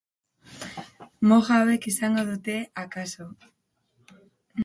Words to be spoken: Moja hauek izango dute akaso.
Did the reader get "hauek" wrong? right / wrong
right